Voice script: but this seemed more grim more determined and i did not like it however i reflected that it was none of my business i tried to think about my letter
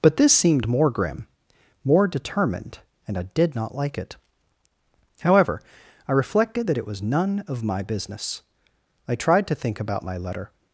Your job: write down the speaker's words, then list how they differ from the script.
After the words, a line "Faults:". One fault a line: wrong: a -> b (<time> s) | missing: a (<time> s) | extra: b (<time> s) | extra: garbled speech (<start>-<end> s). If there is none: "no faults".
but this seemed more grim more determined and i did not like it however i reflected that it was none of my business i tried to think about my letter
Faults:
no faults